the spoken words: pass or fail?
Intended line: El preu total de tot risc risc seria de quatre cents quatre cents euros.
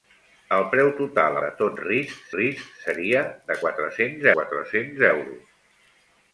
pass